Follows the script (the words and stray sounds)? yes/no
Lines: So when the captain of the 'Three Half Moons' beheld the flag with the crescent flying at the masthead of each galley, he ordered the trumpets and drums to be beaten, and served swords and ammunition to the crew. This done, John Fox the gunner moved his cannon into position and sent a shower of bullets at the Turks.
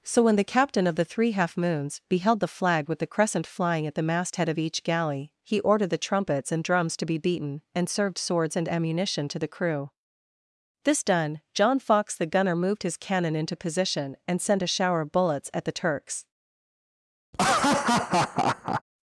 no